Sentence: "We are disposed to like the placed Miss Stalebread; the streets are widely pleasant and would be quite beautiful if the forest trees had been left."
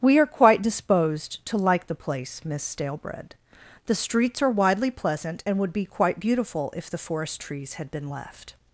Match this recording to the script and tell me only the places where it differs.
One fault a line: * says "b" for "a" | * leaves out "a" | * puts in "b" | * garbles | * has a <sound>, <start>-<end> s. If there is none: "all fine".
* puts in "quite"
* says "place" for "placed"